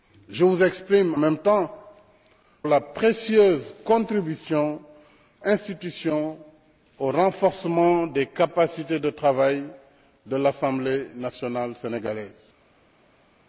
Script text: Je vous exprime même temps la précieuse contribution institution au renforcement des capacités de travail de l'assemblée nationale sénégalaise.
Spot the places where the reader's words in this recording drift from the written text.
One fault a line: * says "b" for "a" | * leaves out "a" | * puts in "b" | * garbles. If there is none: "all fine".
all fine